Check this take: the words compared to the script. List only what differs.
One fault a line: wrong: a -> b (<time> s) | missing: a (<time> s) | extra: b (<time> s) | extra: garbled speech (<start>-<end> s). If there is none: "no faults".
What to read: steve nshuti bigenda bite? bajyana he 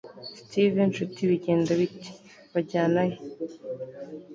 no faults